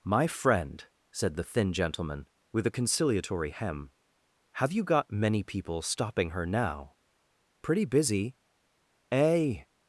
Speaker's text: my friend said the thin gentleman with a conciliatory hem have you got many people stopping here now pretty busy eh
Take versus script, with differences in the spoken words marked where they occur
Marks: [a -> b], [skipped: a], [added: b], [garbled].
my friend said the thin gentleman with a conciliatory hem have you got many people stopping [here -> her] now pretty busy eh